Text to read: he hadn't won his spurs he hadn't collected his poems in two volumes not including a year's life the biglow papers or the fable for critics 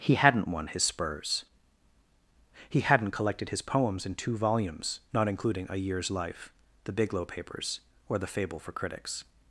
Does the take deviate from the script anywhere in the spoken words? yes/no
no